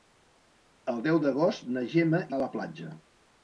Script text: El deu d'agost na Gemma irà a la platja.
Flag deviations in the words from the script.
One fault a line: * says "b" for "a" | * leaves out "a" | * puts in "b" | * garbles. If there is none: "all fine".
* leaves out "irà"